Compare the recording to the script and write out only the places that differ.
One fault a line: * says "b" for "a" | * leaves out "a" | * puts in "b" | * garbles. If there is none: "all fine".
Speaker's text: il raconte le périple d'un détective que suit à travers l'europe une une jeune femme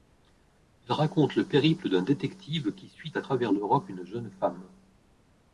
* says "qui" for "que"
* leaves out "une"